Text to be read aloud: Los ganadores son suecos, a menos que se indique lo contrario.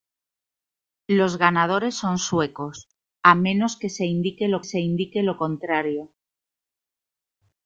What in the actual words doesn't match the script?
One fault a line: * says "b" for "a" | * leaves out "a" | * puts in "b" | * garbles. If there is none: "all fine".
* puts in "se indique lo"